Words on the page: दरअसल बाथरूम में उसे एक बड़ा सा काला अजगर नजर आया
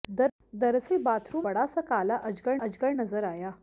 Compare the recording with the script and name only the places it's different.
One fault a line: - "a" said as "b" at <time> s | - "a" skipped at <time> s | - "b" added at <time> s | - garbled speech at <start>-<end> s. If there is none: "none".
- "में उसे एक" skipped at 1.4 s
- "अजगर" added at 2.6 s